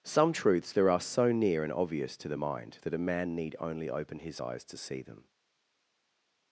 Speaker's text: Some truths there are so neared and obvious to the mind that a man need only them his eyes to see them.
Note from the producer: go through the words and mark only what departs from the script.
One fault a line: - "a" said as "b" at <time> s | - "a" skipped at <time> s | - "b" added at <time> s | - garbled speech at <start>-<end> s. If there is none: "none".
- "neared" said as "near" at 1.3 s
- "them" said as "open" at 3.9 s